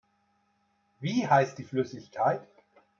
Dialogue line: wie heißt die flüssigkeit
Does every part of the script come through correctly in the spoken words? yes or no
yes